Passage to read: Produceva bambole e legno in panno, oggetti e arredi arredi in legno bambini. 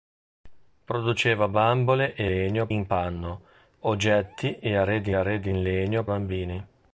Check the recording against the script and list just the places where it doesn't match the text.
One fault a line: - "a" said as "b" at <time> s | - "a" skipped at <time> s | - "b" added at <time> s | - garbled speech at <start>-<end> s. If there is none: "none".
none